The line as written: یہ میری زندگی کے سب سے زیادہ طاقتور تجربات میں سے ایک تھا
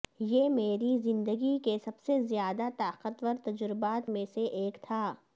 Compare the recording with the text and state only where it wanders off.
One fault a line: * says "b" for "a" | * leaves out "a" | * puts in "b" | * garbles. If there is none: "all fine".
all fine